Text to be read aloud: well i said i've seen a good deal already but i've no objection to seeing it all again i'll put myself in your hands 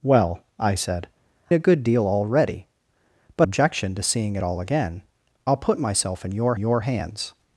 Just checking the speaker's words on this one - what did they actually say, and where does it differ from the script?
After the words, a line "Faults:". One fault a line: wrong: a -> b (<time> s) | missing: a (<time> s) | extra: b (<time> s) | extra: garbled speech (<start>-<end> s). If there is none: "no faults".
well i said a good deal already but objection to seeing it all again i'll put myself in your your hands
Faults:
missing: i've seen (1.1 s)
missing: i've no (3.5 s)
extra: your (6.6 s)